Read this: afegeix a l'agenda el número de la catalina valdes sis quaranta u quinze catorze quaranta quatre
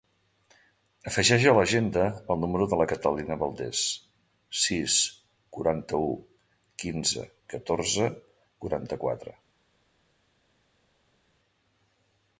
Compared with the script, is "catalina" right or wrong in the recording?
right